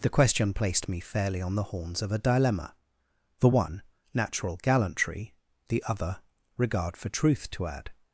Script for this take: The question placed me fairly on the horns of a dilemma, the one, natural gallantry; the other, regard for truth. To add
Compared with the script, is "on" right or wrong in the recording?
right